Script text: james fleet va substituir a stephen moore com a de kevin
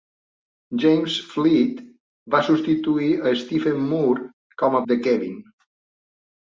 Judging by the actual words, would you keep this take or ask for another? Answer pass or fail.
pass